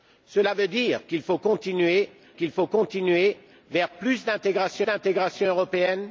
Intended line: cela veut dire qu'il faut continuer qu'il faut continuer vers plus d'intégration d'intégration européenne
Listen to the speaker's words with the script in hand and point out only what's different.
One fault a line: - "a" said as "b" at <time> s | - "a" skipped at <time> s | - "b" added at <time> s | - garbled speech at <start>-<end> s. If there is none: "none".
none